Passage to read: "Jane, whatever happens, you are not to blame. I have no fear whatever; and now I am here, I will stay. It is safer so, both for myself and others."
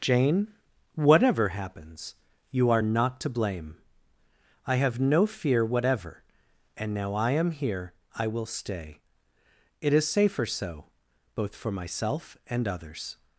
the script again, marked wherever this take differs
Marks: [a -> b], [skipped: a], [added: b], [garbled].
"Jane, whatever happens, you are not to blame. I have no fear whatever; and now I am here, I will stay. It is safer so, both for myself and others."